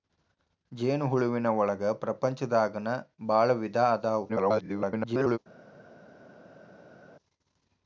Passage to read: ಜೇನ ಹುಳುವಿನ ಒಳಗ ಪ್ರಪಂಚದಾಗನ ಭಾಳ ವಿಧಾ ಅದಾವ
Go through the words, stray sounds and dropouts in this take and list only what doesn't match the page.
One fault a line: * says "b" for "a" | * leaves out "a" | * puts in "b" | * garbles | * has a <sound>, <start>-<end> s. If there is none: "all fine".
* garbles